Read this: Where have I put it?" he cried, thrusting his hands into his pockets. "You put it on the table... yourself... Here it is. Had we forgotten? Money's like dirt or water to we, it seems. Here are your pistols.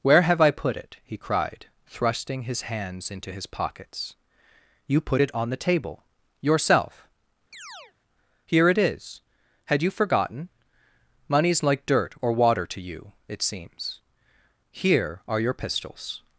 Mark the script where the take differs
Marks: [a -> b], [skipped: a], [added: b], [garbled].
Where have I put it?" he cried, thrusting his hands into his pockets. "You put it on the table... yourself... Here it is. Had [we -> you] forgotten? Money's like dirt or water to [we, -> you] it seems. Here are your pistols.